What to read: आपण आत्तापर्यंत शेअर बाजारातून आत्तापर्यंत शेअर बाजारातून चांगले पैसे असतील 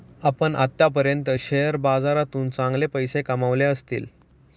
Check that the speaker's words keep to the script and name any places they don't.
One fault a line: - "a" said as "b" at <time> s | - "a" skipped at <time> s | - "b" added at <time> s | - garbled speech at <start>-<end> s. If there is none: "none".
- "आत्तापर्यंत शेअर बाजारातून" skipped at 2.5 s
- "कमावले" added at 3.2 s